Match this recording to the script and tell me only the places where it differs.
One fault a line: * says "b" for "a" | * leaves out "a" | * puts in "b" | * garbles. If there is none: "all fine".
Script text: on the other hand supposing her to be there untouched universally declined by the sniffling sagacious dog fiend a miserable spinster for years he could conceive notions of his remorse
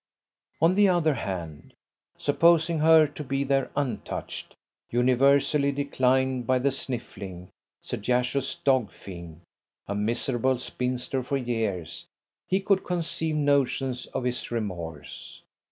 all fine